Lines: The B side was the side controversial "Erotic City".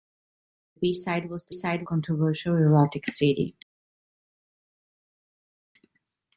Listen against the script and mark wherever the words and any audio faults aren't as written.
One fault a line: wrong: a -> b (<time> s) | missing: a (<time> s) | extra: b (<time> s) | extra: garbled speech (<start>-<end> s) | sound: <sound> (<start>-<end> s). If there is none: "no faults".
no faults